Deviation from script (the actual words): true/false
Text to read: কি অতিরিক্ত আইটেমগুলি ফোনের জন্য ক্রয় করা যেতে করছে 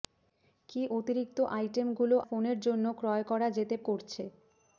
false